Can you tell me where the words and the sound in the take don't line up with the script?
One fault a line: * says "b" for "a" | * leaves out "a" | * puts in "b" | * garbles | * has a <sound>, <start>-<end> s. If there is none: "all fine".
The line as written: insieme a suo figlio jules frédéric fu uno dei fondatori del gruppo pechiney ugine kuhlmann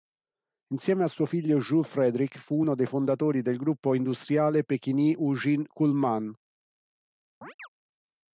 * puts in "industriale"
* has a chirp, 7.4-7.7 s